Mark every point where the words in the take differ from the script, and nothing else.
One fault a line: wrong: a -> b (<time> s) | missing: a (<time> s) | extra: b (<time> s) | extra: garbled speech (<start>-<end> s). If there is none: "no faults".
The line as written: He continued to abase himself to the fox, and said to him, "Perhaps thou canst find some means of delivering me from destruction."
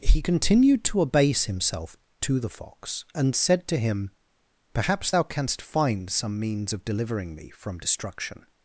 no faults